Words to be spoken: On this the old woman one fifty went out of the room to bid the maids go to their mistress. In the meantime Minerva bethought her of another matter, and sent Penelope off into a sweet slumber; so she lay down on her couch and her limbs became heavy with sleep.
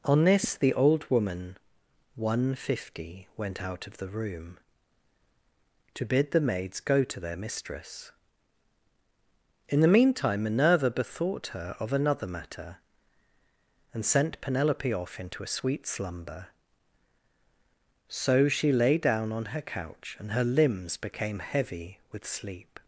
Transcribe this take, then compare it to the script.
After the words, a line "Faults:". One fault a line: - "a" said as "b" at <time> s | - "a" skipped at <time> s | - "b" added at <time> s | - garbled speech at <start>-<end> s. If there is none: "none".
On this the old woman one fifty went out of the room to bid the maids go to their mistress. In the meantime Minerva bethought her of another matter, and sent Penelope off into a sweet slumber; so she lay down on her couch and her limbs became heavy with sleep.
Faults:
none